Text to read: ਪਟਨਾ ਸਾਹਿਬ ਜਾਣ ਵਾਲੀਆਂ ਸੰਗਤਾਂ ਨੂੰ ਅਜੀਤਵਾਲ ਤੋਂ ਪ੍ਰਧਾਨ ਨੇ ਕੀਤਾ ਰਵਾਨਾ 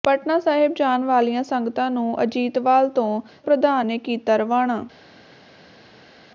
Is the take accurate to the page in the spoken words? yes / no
yes